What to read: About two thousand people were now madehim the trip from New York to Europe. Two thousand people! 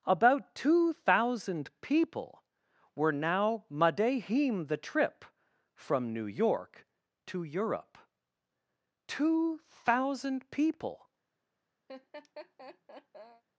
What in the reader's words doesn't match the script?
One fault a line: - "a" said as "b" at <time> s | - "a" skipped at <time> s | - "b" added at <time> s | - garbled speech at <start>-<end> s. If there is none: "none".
none